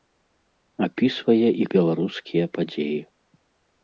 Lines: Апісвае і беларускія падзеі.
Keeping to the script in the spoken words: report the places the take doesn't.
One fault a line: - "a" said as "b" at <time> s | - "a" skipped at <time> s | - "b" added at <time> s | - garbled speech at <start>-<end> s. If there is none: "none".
none